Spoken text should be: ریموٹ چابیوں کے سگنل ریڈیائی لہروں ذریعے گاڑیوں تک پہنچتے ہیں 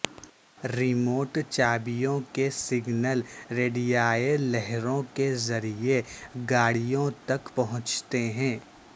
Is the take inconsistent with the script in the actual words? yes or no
yes